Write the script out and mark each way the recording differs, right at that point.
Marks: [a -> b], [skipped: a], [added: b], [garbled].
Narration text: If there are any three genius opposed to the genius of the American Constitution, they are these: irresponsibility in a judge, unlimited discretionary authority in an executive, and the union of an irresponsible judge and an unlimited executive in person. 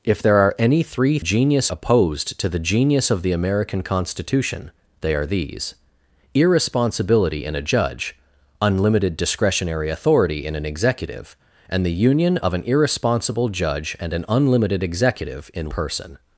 If there are any three genius opposed to the genius of the American Constitution, they are these: irresponsibility in a judge, unlimited discretionary authority in an executive, and the union of an irresponsible judge and an unlimited executive in person.